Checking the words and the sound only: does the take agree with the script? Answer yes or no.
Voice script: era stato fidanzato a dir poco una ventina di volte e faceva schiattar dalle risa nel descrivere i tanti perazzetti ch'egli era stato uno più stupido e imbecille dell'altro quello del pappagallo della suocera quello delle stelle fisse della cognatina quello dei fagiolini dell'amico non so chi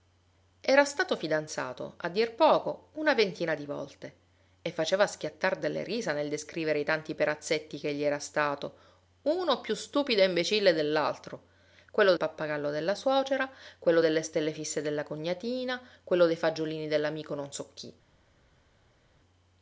no